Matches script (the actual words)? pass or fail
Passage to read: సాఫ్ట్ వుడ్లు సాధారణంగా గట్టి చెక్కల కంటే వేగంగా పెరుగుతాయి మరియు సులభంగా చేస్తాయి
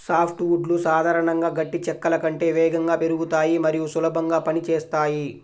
fail